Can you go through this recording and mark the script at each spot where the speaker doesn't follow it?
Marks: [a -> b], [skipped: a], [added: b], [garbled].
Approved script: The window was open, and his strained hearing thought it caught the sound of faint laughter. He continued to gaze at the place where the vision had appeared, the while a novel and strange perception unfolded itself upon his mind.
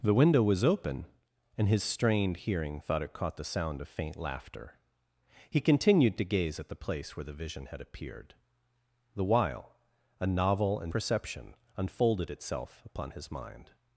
The window was open, and his strained hearing thought it caught the sound of faint laughter. He continued to gaze at the place where the vision had appeared, the while a novel and [skipped: strange] perception unfolded itself upon his mind.